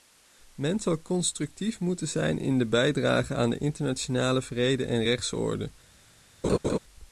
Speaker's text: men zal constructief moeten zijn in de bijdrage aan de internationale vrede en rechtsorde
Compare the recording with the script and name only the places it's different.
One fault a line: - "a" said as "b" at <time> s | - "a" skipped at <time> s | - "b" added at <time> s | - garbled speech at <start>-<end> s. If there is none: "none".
none